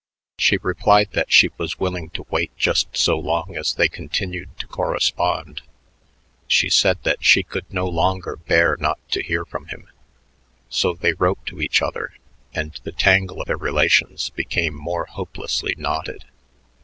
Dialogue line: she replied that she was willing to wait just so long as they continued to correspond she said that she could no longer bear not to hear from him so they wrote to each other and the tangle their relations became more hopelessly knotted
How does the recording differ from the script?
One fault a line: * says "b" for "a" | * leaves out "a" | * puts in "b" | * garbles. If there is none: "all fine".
all fine